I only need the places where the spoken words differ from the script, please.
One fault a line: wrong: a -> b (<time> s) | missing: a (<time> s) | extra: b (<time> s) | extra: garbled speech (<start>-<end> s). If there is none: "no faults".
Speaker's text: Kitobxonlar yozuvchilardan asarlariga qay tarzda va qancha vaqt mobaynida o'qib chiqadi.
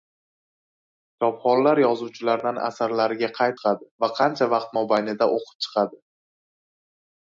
wrong: tarzda -> chiqadi (3.6 s)